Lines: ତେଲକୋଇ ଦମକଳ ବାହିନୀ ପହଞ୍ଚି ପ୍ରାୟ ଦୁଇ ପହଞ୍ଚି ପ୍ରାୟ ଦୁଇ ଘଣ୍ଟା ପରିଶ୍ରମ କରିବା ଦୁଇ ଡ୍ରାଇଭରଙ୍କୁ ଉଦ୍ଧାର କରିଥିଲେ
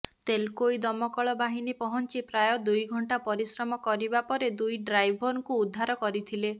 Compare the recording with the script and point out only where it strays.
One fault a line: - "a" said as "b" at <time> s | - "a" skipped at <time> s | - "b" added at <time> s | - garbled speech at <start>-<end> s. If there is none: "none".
- "ପହଞ୍ଚି ପ୍ରାୟ ଦୁଇ" skipped at 2.9 s
- "ପରେ" added at 4.3 s